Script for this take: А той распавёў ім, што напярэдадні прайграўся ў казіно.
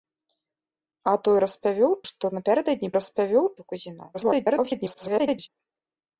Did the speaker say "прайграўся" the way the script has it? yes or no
no